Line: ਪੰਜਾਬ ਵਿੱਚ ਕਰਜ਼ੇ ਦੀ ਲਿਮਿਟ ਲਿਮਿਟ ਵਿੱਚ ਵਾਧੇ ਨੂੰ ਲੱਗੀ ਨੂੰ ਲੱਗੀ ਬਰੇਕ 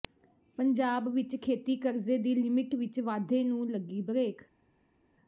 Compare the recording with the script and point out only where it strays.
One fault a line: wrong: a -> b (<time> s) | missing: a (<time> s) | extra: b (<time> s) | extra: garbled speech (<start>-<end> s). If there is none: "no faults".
extra: ਖੇਤੀ (1.4 s)
missing: ਲਿਮਿਟ (2.7 s)
missing: ਨੂੰ ਲੱਗੀ (4.0 s)